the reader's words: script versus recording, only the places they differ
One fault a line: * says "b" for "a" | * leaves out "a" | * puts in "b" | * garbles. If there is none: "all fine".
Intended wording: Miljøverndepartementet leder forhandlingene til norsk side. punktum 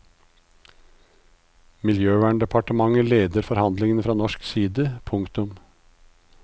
* says "fra" for "til"